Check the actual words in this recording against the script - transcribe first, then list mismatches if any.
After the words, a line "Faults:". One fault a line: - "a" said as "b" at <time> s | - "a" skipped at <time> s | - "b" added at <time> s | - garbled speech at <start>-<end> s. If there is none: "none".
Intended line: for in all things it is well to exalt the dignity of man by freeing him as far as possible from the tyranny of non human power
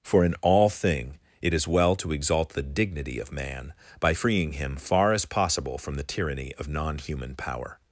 for in all thing it is well to exalt the dignity of man by freeing him far as possible from the tyranny of non human power
Faults:
- "things" said as "thing" at 0.7 s
- "as" skipped at 4.8 s